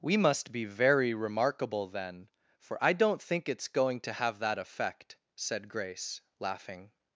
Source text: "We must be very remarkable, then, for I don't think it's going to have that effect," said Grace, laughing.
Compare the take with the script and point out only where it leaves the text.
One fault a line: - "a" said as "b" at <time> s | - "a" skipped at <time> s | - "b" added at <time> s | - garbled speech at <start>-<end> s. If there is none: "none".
none